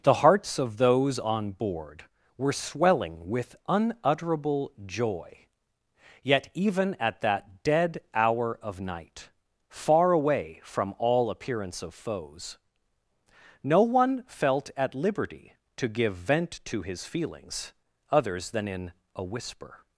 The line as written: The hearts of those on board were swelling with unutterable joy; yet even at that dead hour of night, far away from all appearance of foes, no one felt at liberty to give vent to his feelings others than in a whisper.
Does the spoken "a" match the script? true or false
true